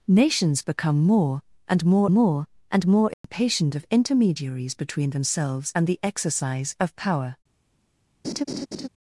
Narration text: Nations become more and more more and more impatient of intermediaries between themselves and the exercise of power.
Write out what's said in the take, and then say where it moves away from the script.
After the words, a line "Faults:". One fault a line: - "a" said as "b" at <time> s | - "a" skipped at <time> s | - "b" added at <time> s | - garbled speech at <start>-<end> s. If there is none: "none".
Nations become more and more more and more impatient of intermediaries between themselves and the exercise of power.
Faults:
none